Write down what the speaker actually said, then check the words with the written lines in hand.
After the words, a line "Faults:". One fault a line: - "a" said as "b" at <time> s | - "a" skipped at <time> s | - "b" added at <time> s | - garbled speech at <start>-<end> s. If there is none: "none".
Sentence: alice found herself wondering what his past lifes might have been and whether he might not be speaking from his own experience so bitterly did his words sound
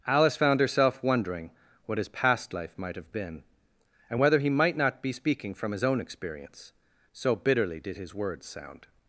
alice found herself wondering what his past life might have been and whether he might not be speaking from his own experience so bitterly did his words sound
Faults:
- "lifes" said as "life" at 2.5 s